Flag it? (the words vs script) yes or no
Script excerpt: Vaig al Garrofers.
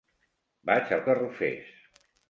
no